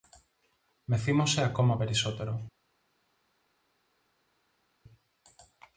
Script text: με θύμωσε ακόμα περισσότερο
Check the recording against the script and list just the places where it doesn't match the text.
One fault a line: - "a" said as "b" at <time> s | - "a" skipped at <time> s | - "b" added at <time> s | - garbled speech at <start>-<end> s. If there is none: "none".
none